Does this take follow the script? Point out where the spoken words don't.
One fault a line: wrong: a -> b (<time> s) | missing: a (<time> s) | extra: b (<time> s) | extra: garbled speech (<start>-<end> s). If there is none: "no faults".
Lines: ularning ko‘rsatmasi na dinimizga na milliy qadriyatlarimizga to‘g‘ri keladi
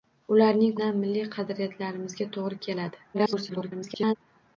missing: ko‘rsatmasi na dinimizga (0.7 s)
extra: garbled speech (3.1-4.2 s)